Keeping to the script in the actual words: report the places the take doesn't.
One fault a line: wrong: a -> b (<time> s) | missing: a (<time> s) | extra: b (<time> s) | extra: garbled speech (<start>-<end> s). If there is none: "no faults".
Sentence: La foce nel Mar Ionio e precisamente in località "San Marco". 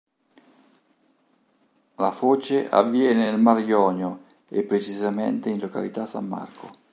extra: avviene (2.7 s)